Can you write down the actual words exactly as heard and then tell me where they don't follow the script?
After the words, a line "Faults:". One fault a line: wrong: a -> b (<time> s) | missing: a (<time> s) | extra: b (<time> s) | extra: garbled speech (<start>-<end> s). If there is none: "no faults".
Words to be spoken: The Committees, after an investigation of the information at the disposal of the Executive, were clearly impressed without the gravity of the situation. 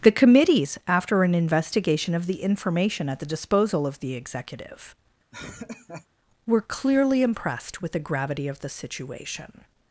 The Committees, after an investigation of the information at the disposal of the Executive, were clearly impressed with the gravity of the situation.
Faults:
wrong: without -> with (7.8 s)